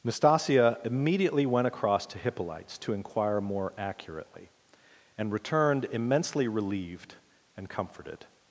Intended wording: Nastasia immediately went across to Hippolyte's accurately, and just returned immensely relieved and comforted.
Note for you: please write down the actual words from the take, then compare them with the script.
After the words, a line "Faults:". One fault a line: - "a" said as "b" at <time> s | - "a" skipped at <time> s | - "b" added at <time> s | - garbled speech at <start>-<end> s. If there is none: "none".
Nastasia immediately went across to Hippolyte's to inquire more accurately, and returned immensely relieved and comforted.
Faults:
- "to inquire more" added at 2.8 s
- "just" skipped at 5.3 s